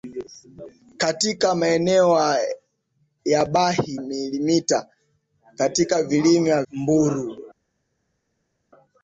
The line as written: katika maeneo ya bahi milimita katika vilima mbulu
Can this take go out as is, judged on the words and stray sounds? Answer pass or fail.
pass